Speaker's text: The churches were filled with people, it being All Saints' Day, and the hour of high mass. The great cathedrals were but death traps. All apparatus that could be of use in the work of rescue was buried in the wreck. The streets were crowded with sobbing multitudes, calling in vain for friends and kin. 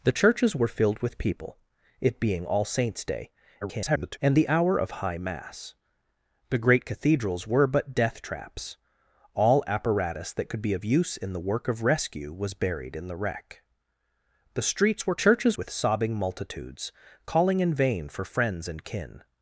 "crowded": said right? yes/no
no